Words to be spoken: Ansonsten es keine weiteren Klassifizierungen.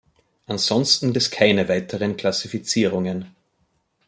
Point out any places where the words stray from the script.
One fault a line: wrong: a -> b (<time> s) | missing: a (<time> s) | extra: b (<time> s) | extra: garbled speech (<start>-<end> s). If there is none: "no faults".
no faults